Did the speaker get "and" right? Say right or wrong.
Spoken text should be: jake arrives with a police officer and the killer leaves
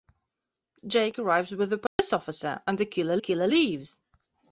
right